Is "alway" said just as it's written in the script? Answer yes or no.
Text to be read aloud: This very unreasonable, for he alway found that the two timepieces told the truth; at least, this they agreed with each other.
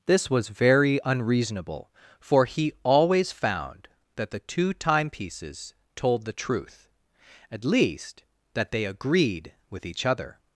no